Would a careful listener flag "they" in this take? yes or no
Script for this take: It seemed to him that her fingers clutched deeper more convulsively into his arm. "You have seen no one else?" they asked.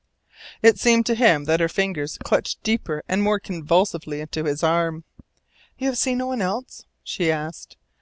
yes